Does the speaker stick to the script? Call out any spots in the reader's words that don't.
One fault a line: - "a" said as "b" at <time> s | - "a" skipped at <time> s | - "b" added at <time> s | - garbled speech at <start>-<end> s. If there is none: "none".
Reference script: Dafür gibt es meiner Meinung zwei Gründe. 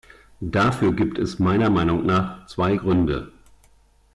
- "nach" added at 2.1 s